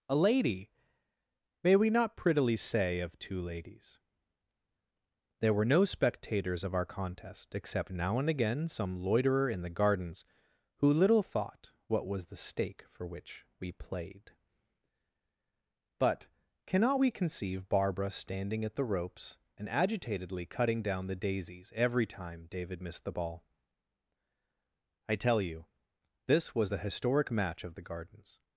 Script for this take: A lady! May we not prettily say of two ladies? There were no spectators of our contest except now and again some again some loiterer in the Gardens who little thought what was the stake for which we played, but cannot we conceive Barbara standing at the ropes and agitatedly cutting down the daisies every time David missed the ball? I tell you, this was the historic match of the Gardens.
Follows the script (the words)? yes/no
no